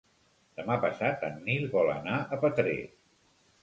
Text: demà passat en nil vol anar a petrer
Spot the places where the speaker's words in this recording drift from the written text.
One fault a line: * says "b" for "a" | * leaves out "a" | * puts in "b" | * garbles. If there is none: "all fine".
all fine